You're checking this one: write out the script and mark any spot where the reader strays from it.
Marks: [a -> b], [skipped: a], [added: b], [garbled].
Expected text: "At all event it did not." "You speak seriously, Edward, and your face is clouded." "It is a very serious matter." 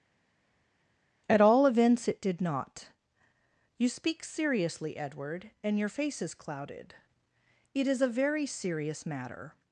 "At all [event -> events] it did not." "You speak seriously, Edward, and your face is clouded." "It is a very serious matter."